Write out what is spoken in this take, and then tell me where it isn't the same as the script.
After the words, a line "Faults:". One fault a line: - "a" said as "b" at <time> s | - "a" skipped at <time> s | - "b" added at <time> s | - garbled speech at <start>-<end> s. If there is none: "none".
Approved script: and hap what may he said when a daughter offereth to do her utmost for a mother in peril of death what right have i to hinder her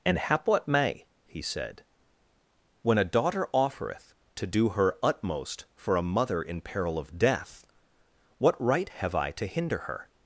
and hap what may he said when a daughter offereth to do her utmost for a mother in peril of death what right have i to hinder her
Faults:
none